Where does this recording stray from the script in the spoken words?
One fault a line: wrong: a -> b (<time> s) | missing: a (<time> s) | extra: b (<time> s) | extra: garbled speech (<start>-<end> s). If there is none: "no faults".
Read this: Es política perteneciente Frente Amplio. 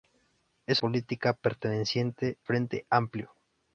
no faults